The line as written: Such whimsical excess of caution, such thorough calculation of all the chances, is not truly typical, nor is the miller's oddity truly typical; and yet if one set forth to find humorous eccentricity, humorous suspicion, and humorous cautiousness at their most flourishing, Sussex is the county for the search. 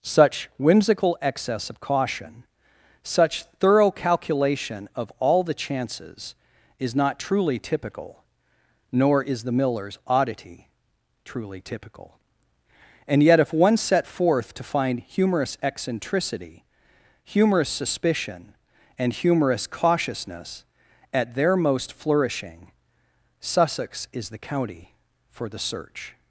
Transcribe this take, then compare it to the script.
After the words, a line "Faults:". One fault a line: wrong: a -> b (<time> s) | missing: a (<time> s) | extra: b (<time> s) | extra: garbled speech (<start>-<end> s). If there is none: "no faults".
Such whimsical excess of caution, such thorough calculation of all the chances, is not truly typical, nor is the miller's oddity truly typical; and yet if one set forth to find humorous eccentricity, humorous suspicion, and humorous cautiousness at their most flourishing, Sussex is the county for the search.
Faults:
no faults